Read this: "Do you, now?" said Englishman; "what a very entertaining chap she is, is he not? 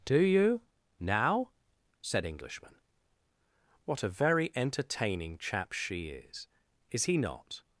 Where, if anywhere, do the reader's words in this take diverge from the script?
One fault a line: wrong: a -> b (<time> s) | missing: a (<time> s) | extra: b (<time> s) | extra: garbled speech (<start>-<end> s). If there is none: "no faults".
no faults